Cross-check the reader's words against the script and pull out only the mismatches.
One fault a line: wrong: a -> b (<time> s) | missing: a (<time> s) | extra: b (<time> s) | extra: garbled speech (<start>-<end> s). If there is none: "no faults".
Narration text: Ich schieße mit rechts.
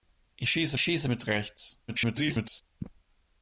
extra: schieße (0.8 s)
extra: garbled speech (1.9-2.6 s)